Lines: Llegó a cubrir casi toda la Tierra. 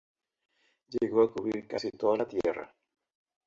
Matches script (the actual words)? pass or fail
pass